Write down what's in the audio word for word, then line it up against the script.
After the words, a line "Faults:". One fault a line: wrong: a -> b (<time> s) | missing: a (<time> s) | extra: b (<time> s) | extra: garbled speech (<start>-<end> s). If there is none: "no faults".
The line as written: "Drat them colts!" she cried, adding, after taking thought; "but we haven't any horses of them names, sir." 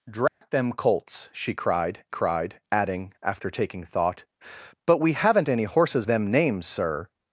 "Drat them colts!" she cried cried, adding, after taking thought; "but we haven't any horses them names, sir."
Faults:
extra: cried (2.1 s)
missing: of (6.1 s)